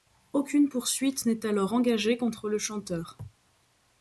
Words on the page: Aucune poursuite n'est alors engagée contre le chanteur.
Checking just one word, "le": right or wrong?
right